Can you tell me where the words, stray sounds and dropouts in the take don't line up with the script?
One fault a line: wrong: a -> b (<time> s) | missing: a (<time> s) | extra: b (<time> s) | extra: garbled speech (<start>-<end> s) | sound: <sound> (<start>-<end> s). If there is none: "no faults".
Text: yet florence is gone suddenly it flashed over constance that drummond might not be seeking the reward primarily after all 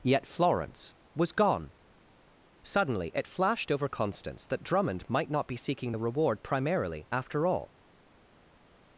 wrong: is -> was (1.1 s)